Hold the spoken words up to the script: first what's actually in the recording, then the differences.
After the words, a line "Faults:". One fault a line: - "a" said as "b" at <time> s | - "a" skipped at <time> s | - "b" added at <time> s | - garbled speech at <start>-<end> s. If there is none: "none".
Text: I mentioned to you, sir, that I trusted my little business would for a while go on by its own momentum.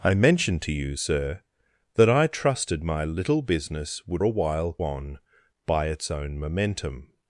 I mentioned to you, sir, that I trusted my little business would a while on by its own momentum.
Faults:
- "for" skipped at 4.2 s
- "go" skipped at 4.8 s